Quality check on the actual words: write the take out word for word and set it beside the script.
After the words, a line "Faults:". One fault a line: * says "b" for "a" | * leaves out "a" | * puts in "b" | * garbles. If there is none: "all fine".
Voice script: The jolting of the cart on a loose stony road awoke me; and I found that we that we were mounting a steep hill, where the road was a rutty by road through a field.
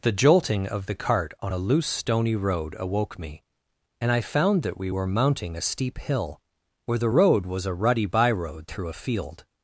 The jolting of the cart on a loose stony road awoke me; and I found that we were mounting a steep hill, where the road was a rutty by road through a field.
Faults:
* leaves out "that we"